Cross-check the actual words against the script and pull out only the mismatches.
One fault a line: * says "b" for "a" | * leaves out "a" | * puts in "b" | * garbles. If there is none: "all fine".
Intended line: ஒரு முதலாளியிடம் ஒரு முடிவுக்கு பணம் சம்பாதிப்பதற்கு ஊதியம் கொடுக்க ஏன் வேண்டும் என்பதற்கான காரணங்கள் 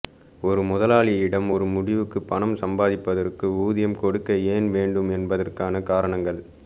all fine